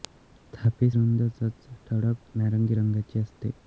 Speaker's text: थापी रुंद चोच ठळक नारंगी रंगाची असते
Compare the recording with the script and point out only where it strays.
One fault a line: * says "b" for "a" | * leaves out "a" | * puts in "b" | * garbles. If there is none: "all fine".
all fine